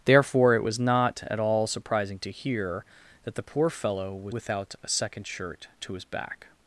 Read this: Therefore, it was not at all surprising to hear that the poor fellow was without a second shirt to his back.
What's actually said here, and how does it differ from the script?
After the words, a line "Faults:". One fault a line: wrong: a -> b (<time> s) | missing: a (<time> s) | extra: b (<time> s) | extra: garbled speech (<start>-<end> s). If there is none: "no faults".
Therefore, it was not at all surprising to hear that the poor fellow was without a second shirt to his back.
Faults:
no faults